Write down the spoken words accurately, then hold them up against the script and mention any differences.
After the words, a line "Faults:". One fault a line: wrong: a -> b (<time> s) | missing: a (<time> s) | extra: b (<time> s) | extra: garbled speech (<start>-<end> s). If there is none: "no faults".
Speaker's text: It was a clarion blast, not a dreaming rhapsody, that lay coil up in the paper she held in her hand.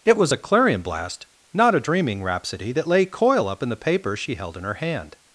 It was a clarion blast, not a dreaming rhapsody, that lay coil up in the paper she held in her hand.
Faults:
no faults